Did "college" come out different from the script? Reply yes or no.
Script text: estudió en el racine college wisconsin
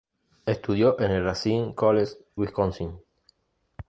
no